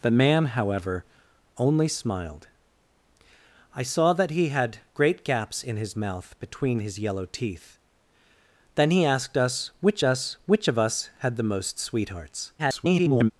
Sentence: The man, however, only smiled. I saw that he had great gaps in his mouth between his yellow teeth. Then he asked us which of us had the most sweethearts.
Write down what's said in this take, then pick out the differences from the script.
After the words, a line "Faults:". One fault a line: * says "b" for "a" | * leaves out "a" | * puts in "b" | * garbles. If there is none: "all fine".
The man, however, only smiled. I saw that he had great gaps in his mouth between his yellow teeth. Then he asked us which us which of us had the most sweethearts. [garbled]
Faults:
* puts in "us which"
* garbles